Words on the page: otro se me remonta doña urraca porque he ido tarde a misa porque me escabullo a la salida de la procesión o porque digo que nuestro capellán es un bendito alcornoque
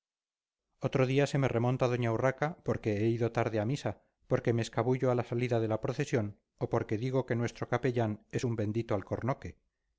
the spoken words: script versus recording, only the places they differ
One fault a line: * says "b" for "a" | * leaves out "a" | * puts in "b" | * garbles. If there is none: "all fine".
* puts in "día"